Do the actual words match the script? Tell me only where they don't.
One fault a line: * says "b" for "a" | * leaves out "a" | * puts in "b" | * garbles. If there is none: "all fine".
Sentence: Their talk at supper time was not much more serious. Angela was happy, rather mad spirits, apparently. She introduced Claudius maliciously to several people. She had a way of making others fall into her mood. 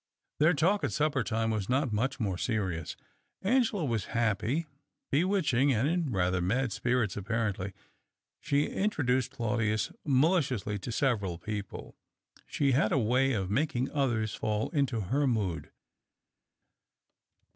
* puts in "bewitching and in"